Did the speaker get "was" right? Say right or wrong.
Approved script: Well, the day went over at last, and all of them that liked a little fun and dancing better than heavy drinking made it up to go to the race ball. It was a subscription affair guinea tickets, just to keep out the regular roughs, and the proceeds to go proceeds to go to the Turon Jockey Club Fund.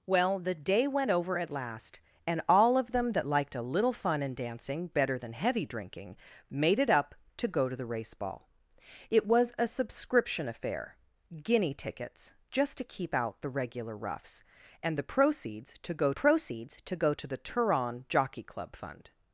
right